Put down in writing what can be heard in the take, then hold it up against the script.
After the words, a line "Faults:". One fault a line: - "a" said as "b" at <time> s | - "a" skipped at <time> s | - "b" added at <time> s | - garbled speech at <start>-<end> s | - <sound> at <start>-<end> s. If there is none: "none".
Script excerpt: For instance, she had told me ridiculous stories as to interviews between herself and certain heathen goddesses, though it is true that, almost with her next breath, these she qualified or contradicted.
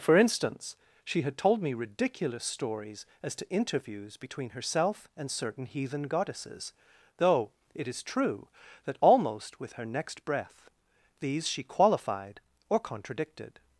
For instance, she had told me ridiculous stories as to interviews between herself and certain heathen goddesses, though it is true that, almost with her next breath, these she qualified or contradicted.
Faults:
none